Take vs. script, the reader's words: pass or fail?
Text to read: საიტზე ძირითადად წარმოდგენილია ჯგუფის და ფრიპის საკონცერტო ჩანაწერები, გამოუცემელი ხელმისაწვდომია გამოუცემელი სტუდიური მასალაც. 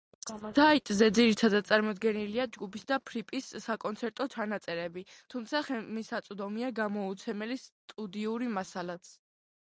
fail